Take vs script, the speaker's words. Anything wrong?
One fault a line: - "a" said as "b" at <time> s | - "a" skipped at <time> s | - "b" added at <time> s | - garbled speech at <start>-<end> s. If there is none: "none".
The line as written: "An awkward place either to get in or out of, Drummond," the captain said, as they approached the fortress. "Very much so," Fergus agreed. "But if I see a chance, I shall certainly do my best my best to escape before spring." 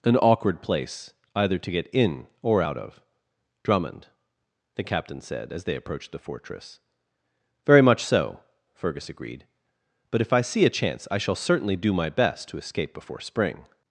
- "my best" skipped at 12.5 s